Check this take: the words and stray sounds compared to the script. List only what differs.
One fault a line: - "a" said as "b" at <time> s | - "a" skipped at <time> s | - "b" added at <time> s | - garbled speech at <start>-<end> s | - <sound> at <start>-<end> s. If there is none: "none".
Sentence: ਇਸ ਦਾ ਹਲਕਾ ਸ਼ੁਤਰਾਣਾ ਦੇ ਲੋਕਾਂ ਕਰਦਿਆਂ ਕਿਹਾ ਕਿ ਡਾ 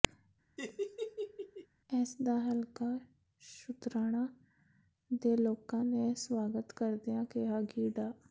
- laugh at 0.6-1.7 s
- "ਨੇ ਸਵਾਗਤ" added at 5.8 s